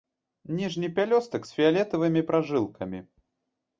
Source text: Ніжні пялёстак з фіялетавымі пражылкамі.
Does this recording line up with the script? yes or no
yes